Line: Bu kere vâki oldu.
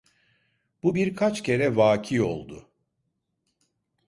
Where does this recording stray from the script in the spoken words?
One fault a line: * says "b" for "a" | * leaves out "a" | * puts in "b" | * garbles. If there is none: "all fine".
* puts in "birkaç"